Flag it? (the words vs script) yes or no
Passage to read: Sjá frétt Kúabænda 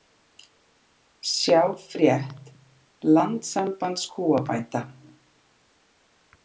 yes